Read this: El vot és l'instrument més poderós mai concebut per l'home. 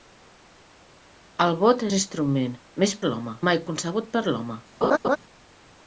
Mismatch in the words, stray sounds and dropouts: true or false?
true